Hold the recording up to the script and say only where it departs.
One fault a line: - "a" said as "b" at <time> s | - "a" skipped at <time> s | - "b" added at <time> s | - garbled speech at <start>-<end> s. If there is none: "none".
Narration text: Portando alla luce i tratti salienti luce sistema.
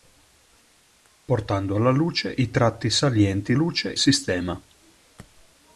none